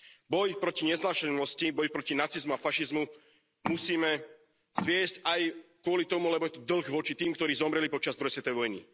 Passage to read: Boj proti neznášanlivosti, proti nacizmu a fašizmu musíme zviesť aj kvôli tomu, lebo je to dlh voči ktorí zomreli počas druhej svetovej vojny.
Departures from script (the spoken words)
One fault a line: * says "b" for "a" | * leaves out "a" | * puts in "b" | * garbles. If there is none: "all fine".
* puts in "boj"
* puts in "tým"